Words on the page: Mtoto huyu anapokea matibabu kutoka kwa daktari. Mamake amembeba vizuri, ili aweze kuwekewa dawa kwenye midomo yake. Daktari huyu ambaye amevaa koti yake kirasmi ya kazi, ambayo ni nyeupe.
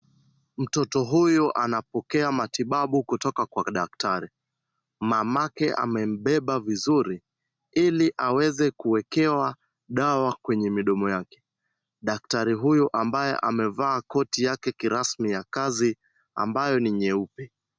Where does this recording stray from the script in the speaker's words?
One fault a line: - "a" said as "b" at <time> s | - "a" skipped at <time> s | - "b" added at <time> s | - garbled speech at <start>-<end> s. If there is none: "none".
none